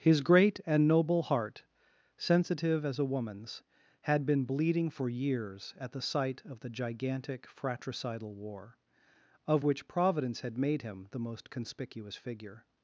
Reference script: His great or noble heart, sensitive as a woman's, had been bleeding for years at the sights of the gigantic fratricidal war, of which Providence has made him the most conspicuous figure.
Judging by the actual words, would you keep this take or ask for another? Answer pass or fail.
fail